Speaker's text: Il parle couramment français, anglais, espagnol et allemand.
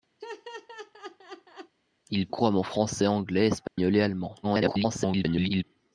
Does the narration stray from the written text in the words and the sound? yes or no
yes